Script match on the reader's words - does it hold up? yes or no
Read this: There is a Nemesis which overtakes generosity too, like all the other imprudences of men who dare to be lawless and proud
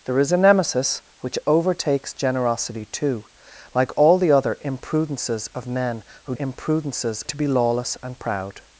no